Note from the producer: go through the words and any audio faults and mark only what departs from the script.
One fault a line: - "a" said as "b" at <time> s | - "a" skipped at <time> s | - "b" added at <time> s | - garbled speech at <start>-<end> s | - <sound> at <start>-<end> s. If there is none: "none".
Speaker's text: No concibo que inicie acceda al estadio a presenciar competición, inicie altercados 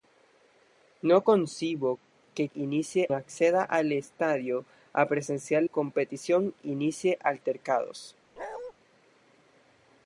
- bark at 8.4-8.7 s